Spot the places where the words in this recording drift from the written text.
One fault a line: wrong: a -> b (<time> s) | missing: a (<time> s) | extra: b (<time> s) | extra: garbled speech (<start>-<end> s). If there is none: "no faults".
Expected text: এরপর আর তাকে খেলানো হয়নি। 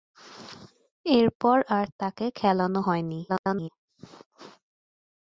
extra: garbled speech (3.3-3.7 s)